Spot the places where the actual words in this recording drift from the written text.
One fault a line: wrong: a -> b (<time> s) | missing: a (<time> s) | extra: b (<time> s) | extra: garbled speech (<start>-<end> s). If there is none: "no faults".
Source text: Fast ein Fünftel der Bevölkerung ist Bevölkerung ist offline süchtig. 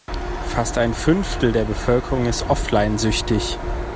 missing: Bevölkerung ist (2.5 s)